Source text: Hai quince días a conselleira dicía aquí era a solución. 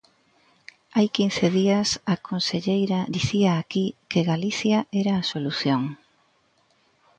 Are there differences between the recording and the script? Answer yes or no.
yes